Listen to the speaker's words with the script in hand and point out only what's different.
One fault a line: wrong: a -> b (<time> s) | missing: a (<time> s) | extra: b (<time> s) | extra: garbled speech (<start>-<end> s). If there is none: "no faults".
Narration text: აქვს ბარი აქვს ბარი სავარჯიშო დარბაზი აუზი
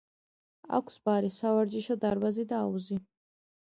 missing: აქვს ბარი (1.3 s)
extra: და (2.5 s)